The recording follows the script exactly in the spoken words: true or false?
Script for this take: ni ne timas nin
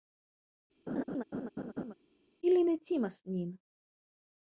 false